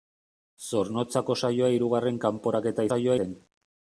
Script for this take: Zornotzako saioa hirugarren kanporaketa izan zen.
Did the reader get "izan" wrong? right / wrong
wrong